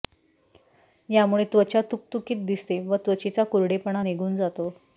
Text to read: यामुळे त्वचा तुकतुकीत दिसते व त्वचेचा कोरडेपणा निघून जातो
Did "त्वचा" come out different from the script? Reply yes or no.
no